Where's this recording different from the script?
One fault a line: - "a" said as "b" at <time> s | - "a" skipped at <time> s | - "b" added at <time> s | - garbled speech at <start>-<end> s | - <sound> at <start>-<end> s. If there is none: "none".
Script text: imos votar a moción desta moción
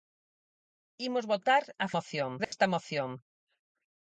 - dropout at 2.4-2.5 s